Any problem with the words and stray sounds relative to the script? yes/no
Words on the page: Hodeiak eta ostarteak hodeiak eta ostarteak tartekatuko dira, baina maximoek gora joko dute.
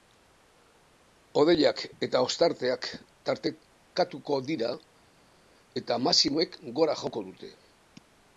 yes